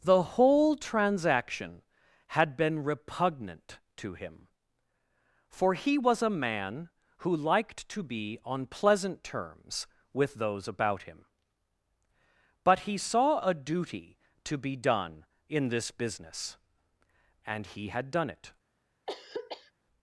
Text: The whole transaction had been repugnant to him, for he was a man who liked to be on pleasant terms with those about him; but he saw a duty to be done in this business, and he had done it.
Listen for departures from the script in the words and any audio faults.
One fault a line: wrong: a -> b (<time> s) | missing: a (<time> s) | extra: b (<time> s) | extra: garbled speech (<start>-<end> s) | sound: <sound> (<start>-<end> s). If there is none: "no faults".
sound: throat clearing (19.1-19.7 s)